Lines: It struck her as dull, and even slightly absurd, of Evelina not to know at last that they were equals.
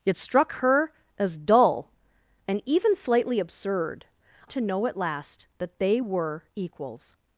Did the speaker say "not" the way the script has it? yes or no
no